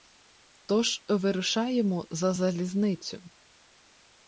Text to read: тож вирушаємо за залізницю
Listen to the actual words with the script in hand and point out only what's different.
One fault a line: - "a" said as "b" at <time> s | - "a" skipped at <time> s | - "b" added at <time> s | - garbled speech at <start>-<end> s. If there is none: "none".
none